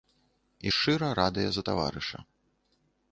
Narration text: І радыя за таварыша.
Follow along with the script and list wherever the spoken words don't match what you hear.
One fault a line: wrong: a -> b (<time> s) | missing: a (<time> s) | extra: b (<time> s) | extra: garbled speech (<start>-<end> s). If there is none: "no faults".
extra: шчыра (0.7 s)